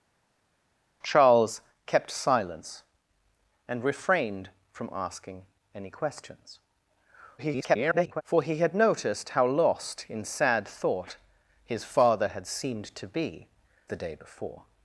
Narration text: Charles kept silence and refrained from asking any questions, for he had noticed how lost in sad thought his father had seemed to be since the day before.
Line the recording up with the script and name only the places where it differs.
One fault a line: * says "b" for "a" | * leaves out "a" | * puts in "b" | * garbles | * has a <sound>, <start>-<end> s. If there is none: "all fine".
* garbles
* leaves out "since"